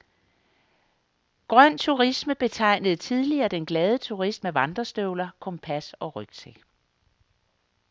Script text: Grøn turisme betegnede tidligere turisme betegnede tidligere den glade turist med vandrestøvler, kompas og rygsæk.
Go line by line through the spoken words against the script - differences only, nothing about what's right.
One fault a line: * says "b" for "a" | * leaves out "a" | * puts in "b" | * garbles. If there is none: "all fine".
* leaves out "turisme betegnede tidligere"